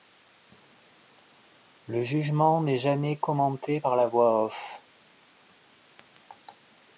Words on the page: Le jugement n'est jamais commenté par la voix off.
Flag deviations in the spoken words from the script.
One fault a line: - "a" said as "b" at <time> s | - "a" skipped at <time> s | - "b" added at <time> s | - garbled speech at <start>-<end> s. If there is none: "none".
none